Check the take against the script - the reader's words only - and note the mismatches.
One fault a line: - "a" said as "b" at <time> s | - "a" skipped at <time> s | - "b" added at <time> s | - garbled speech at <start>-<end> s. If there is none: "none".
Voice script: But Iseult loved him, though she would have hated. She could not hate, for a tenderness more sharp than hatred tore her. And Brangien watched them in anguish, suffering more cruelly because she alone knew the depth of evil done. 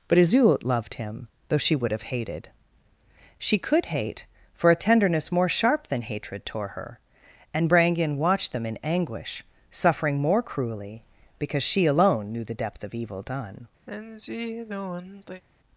- "not" skipped at 3.9 s